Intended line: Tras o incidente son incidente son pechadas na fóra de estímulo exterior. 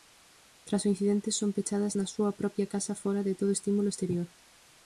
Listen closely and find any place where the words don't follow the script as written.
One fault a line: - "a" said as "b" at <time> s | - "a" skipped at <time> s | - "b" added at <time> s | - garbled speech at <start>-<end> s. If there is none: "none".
- "incidente son pechadas na" said as "pechadas na súa propia casa" at 1.6 s
- "todo" added at 3.4 s